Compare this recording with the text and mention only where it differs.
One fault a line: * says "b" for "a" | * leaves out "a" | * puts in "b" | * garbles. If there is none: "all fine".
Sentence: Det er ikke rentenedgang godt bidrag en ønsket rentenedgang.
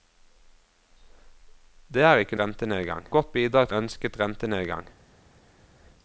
all fine